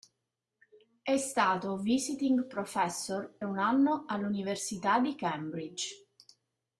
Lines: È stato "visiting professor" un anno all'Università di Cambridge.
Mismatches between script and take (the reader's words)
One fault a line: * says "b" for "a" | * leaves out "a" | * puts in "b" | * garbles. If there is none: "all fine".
all fine